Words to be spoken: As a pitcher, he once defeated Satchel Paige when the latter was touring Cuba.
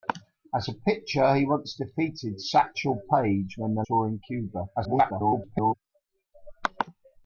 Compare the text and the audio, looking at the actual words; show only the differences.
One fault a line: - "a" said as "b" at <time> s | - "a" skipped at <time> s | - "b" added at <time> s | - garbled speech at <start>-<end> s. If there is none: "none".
- "latter was" skipped at 3.8 s
- garbled speech at 4.8-5.7 s